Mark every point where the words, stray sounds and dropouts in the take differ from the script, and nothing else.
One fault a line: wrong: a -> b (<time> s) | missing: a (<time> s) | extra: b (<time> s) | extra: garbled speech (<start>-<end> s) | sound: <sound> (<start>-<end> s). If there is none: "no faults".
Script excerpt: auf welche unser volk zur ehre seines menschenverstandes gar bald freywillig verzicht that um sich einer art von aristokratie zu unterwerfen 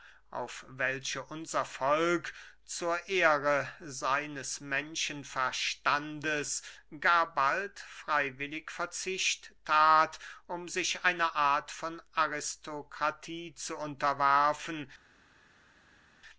no faults